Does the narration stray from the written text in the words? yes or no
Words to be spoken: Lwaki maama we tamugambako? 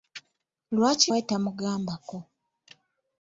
yes